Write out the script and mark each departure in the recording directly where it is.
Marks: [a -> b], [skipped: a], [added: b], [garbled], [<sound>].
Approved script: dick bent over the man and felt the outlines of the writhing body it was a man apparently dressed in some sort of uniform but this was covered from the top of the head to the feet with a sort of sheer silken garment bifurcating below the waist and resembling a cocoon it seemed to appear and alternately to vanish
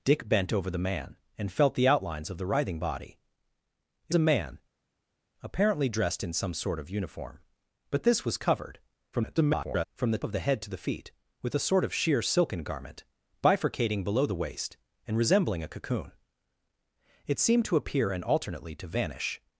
dick bent over the man and felt the outlines of the writhing body it [skipped: was] a man apparently dressed in some sort of uniform but this was covered [garbled] from the [skipped: top] of the head to the feet with a sort of sheer silken garment bifurcating below the waist and resembling a cocoon it seemed to appear and alternately to vanish